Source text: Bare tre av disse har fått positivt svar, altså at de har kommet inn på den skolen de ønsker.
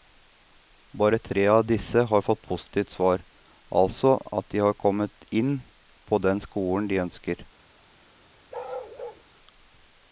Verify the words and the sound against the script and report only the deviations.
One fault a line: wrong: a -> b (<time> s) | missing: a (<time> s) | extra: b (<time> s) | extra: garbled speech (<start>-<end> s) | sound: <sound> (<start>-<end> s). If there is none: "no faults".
sound: bark (8.5-9.2 s)